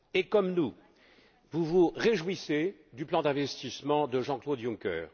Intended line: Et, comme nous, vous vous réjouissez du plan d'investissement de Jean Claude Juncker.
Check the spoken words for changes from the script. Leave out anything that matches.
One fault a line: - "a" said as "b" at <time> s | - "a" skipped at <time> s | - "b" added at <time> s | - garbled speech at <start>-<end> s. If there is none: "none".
none